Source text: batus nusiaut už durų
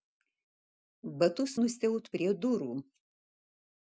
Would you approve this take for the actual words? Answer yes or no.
no